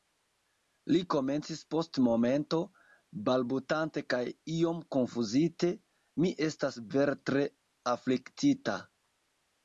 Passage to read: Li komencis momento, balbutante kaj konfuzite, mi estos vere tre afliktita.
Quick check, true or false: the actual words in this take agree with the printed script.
false